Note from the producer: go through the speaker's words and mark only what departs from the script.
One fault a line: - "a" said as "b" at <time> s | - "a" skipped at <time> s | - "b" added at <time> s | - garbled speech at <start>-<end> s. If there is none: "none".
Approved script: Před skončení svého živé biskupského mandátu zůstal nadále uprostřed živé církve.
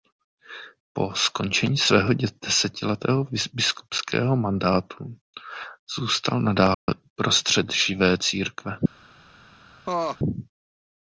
- "Před" said as "Po" at 0.9 s
- "živé" said as "desetiletého" at 2.4 s